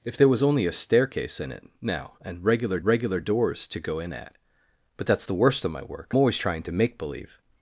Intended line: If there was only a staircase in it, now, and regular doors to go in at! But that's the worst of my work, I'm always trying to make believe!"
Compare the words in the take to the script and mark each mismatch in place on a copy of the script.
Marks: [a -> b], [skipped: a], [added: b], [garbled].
If there was only a staircase in it, now, and regular [added: regular] doors to go in at! But that's the worst of my work, [skipped: I'm] always trying to make believe!"